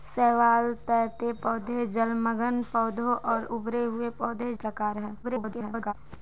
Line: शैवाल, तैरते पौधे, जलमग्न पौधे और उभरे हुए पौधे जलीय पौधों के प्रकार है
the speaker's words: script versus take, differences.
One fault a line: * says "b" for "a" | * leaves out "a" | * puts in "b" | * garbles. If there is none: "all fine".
* leaves out "जलीय पौधों के"
* garbles